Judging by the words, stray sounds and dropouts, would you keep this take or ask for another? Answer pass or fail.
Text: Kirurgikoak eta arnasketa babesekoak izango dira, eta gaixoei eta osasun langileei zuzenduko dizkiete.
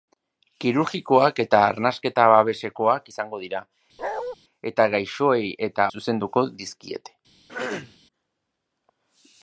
fail